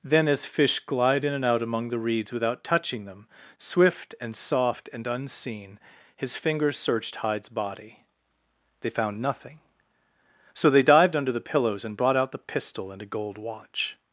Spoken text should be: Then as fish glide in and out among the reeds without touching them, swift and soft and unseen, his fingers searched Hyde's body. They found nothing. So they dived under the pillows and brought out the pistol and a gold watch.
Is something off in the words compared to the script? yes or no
no